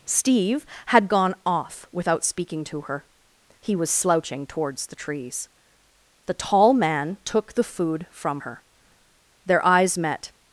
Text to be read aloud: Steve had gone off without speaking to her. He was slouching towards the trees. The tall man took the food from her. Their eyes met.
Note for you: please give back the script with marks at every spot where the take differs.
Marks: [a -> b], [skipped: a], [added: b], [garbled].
Steve had gone off without speaking to her. He was slouching towards the trees. The tall man took the food from her. Their eyes met.